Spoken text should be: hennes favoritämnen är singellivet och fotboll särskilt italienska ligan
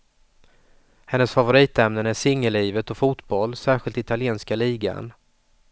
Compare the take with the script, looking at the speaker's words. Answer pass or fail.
pass